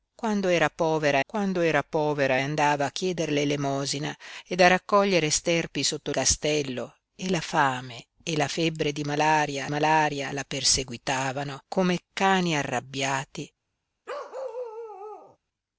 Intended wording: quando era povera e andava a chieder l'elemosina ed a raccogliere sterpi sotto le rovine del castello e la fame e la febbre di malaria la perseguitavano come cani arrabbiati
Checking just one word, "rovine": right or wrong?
wrong